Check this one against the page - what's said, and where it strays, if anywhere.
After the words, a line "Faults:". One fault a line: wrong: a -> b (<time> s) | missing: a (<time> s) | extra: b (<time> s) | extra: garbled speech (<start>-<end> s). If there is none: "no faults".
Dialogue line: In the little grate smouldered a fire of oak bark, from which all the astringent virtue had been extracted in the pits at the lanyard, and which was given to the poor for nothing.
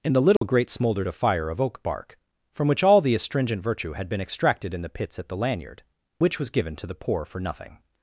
In the little grate smouldered a fire of oak bark, from which all the astringent virtue had been extracted in the pits at the lanyard, which was given to the poor for nothing.
Faults:
missing: and (5.8 s)